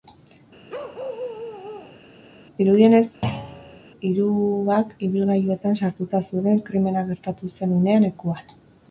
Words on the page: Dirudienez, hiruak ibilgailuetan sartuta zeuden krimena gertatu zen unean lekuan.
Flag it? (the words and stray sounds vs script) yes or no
yes